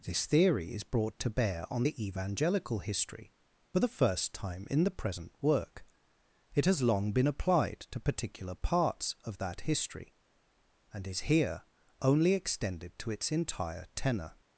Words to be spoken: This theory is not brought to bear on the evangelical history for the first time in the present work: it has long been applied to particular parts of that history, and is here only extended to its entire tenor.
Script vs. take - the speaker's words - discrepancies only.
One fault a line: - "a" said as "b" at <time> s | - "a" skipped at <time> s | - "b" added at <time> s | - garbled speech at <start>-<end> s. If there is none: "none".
- "not" skipped at 0.8 s